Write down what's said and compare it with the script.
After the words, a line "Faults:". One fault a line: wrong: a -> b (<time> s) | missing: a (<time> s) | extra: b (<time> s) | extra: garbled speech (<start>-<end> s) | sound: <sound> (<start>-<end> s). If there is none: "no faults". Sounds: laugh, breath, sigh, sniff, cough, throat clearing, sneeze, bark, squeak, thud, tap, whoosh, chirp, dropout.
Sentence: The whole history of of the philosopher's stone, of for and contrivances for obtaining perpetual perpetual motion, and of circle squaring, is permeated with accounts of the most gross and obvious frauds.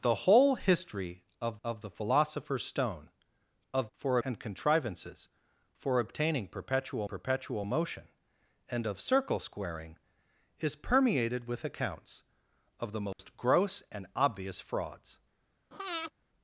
The whole history of of the philosopher's stone, of for and contrivances for obtaining perpetual perpetual motion, and of circle squaring, is permeated with accounts of the most gross and obvious frauds.
Faults:
sound: dropout (13.1-13.2 s)
sound: breath (15.7-16.1 s)